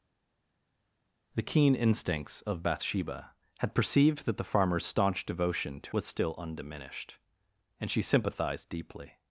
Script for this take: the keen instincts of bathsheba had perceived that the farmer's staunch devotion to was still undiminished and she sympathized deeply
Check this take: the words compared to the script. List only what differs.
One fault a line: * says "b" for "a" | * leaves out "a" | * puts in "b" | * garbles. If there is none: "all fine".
all fine